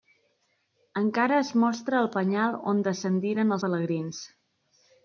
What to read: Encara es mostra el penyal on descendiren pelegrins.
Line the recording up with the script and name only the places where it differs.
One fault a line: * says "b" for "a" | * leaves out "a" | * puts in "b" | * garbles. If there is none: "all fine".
all fine